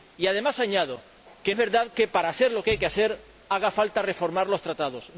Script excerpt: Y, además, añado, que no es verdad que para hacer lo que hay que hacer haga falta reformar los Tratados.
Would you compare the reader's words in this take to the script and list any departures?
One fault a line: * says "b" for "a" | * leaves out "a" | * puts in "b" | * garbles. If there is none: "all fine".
* leaves out "no"